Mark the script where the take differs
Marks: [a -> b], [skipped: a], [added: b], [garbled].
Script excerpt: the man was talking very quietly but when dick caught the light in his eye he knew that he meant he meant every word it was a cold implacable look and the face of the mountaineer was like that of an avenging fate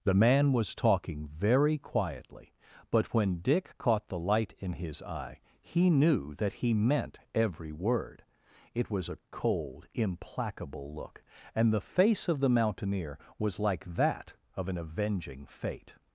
the man was talking very quietly but when dick caught the light in his eye he knew that he meant [skipped: he meant] every word it was a cold implacable look and the face of the mountaineer was like that of an avenging fate